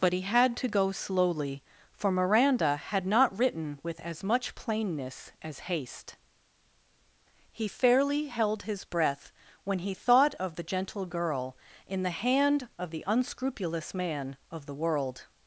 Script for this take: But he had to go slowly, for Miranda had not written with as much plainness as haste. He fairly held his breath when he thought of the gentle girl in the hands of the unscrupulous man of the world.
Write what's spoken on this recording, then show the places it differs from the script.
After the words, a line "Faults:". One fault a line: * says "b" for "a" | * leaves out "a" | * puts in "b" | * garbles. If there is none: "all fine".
But he had to go slowly, for Miranda had not written with as much plainness as haste. He fairly held his breath when he thought of the gentle girl in the hand of the unscrupulous man of the world.
Faults:
* says "hand" for "hands"